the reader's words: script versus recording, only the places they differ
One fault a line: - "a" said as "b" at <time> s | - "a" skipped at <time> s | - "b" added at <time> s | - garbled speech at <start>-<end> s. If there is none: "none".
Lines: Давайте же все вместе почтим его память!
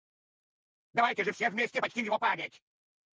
none